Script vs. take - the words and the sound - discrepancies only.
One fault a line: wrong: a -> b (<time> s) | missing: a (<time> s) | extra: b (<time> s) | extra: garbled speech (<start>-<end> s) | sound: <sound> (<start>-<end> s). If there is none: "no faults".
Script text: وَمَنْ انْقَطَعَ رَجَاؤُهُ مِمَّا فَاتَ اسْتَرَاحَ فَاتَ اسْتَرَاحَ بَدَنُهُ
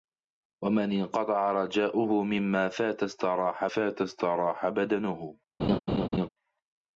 sound: laugh (5.6-6.3 s)